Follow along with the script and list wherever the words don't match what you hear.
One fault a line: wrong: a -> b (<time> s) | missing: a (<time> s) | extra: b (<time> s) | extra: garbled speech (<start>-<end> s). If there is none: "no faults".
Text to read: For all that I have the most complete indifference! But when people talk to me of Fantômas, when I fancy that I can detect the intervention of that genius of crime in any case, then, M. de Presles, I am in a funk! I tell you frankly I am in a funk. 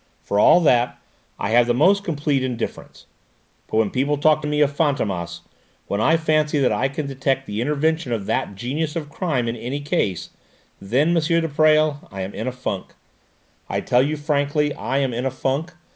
no faults